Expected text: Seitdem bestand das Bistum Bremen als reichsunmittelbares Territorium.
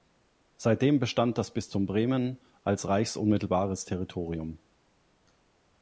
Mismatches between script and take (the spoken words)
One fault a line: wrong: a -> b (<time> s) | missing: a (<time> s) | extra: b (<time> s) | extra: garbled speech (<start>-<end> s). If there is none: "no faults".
no faults